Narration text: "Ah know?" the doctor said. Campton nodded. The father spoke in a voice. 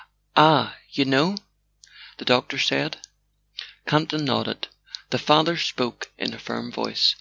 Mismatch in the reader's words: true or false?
true